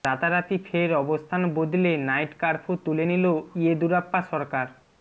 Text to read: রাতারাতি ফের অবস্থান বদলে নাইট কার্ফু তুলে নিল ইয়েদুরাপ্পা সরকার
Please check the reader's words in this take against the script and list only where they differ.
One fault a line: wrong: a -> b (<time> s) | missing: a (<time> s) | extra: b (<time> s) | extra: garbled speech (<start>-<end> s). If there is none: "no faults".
no faults